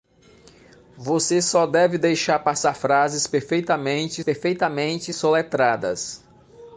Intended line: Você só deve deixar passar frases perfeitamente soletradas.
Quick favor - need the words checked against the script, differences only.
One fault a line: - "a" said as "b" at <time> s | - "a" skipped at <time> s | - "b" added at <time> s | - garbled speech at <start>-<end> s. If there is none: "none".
- "perfeitamente" added at 4.2 s